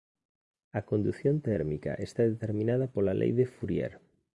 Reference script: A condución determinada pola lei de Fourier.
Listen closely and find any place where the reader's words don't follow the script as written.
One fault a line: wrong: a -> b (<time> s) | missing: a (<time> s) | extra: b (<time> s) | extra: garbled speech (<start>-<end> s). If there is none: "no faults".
extra: térmica está (1.5 s)